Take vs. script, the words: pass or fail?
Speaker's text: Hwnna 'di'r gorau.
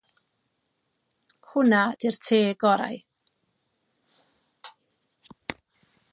fail